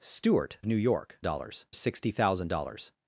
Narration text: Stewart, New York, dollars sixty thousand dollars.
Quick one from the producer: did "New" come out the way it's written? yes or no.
yes